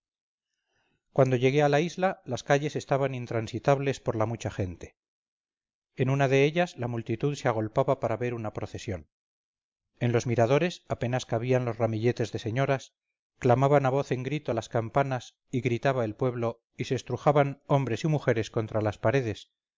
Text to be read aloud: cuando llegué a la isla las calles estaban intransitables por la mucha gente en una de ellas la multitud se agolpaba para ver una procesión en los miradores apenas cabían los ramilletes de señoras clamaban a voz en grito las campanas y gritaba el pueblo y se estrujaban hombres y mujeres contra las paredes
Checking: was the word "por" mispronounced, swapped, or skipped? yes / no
no